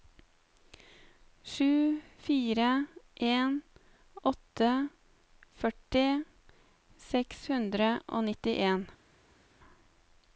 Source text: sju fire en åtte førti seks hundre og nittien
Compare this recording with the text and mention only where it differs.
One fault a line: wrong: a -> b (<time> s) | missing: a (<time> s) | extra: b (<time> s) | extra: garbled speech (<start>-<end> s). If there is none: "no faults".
no faults